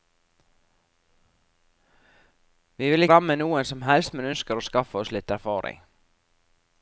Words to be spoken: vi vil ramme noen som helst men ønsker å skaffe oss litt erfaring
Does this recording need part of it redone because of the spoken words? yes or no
no